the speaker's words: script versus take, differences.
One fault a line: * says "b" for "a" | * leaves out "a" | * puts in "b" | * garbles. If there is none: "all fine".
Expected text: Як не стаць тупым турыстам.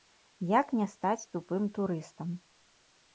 all fine